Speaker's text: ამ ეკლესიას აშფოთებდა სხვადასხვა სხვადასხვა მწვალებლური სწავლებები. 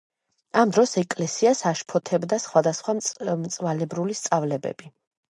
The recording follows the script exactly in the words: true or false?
false